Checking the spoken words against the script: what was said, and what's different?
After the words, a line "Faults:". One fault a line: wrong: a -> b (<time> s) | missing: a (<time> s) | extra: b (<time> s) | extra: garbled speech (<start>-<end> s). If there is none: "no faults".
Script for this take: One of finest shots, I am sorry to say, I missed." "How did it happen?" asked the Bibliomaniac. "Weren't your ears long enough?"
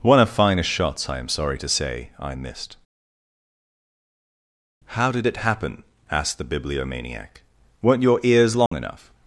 One of finest shots, I am sorry to say, I missed." "How did it happen?" asked the Bibliomaniac. "Weren't your ears long enough?"
Faults:
no faults